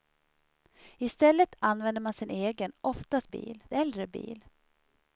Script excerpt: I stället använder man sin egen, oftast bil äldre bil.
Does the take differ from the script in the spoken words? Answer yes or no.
no